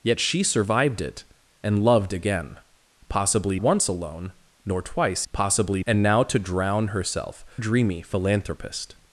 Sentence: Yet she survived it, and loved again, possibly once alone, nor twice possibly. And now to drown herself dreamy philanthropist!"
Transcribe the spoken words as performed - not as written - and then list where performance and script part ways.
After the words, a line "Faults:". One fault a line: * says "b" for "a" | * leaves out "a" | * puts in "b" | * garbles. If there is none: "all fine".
Yet she survived it, and loved again, possibly once alone, nor twice possibly. And now to drown herself dreamy philanthropist!"
Faults:
all fine